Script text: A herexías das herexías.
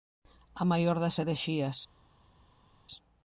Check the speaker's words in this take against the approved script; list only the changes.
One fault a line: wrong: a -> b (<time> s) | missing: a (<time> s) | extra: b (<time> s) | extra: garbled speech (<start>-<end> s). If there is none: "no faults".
wrong: herexías -> maior (0.7 s)